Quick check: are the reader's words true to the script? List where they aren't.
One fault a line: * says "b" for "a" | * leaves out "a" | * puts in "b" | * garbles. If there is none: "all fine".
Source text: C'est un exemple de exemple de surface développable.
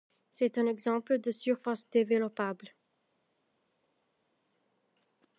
* leaves out "exemple de"